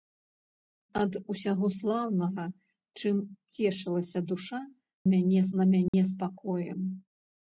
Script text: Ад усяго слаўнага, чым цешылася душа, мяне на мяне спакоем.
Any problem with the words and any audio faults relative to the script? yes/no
yes